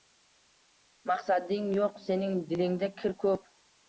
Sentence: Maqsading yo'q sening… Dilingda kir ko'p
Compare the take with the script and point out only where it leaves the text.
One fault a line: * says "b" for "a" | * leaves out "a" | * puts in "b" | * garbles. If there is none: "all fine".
all fine